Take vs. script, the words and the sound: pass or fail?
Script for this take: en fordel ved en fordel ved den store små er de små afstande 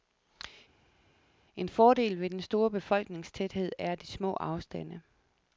fail